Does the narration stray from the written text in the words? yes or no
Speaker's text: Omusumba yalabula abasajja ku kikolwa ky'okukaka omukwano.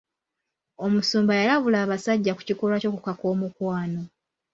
no